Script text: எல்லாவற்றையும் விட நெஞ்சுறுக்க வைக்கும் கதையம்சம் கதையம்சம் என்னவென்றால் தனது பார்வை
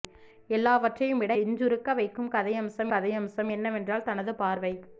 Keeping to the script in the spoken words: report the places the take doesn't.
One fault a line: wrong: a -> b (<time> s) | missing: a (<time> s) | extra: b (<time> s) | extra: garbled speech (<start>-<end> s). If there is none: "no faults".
no faults